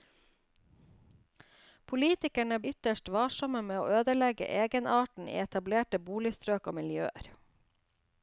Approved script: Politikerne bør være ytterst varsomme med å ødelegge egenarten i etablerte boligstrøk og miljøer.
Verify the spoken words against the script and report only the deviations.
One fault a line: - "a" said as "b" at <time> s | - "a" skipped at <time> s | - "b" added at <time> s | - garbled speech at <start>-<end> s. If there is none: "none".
- "bør være" skipped at 2.6 s